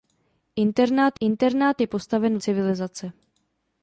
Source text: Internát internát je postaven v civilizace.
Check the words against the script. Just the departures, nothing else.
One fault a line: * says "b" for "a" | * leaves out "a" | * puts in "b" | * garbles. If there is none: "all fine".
all fine